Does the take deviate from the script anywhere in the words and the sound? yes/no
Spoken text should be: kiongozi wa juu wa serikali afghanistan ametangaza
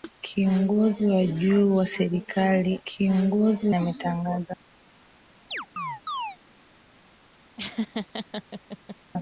yes